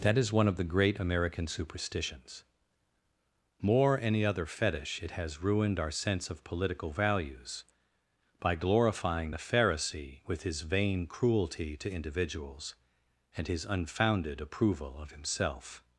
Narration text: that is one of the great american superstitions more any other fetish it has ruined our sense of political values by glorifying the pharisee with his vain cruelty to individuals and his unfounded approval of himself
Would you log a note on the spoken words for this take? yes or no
no